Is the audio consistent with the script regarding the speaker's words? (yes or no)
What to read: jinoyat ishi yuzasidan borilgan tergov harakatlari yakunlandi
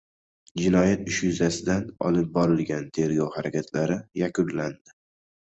no